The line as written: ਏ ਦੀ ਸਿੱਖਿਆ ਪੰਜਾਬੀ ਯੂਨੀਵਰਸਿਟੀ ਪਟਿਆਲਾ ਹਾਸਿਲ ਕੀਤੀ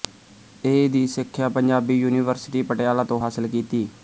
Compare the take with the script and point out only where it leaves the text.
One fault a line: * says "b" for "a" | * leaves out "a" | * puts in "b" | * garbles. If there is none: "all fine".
* puts in "ਤੋਂ"